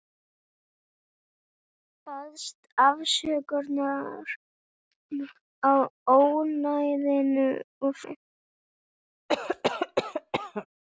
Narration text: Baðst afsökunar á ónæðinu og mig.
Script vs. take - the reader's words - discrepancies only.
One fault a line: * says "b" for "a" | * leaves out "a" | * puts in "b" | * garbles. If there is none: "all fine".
all fine